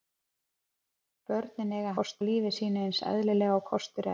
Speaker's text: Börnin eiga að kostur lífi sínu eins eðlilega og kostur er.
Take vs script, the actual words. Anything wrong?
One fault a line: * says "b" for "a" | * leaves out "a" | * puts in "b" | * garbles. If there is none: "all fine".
all fine